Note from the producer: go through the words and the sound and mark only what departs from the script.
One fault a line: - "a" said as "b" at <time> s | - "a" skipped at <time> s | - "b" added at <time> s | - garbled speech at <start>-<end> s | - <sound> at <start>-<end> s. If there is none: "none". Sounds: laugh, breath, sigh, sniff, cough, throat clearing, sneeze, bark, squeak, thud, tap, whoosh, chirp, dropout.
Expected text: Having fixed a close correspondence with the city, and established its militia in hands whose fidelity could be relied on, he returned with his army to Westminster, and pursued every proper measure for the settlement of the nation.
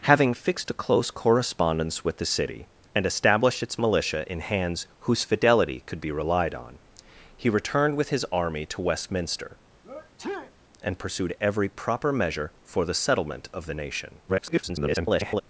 - sneeze at 9.8-10.5 s
- garbled speech at 14.3-15.4 s